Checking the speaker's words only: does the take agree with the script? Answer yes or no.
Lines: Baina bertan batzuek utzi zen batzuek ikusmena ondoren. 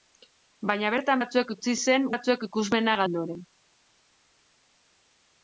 yes